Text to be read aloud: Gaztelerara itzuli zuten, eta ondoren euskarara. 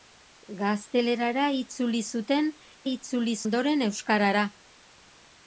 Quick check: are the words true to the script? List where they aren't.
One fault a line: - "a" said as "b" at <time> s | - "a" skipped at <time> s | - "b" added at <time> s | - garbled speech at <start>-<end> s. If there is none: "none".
- "eta" said as "itzuli" at 2.9 s